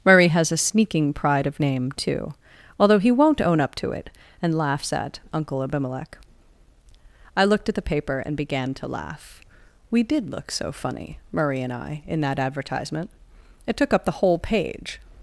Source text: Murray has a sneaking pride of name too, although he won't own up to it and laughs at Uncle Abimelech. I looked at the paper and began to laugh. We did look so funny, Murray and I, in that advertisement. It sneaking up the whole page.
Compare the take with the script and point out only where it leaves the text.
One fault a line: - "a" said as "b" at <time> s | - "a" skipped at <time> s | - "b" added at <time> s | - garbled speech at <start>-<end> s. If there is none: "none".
- "sneaking" said as "took" at 13.8 s